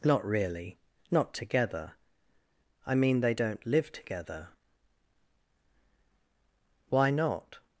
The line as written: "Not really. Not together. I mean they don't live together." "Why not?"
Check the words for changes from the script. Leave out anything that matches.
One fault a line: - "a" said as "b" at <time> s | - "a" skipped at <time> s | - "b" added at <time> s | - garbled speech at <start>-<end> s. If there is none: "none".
none